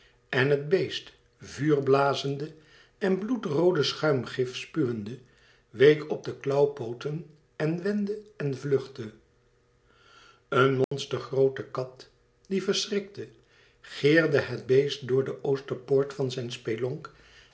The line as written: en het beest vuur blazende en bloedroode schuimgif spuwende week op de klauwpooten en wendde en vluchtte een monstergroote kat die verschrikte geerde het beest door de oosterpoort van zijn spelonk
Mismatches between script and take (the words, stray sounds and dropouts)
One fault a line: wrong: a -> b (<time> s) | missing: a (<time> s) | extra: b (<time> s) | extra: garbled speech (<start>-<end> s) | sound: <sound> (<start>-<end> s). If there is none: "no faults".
sound: dropout (10.8-10.9 s)